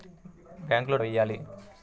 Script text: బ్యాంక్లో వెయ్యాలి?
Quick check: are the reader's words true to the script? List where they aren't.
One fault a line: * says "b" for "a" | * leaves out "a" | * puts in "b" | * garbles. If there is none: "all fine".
all fine